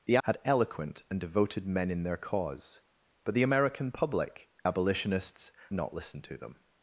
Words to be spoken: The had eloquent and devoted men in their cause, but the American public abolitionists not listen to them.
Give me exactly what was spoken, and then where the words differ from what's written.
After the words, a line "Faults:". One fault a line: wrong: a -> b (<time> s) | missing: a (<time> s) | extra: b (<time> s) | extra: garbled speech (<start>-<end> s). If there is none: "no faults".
The had eloquent and devoted men in their cause, but the American public abolitionists not listen to them.
Faults:
no faults